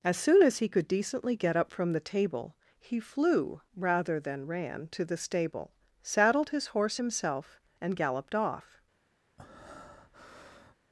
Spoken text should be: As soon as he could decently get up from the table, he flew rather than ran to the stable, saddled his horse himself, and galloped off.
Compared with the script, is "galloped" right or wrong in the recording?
right